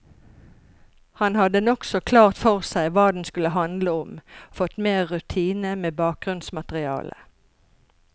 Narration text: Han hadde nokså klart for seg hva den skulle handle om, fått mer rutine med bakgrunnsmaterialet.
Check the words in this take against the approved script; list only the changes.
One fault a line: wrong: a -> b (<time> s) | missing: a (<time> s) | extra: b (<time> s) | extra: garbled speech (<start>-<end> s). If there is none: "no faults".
no faults